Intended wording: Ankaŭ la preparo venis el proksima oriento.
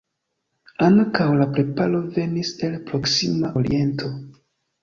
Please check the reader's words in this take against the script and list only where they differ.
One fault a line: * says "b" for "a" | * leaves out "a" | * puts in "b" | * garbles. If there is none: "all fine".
all fine